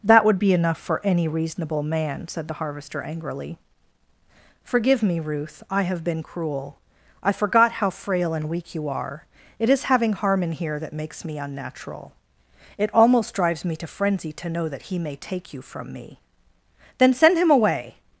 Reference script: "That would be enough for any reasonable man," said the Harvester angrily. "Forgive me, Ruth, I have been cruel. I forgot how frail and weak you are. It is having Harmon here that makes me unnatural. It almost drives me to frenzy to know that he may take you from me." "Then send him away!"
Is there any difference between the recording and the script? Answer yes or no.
no